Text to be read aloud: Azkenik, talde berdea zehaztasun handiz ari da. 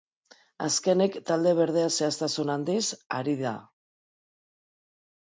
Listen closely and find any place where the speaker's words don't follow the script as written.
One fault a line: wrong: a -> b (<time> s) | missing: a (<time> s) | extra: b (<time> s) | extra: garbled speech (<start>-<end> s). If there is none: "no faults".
no faults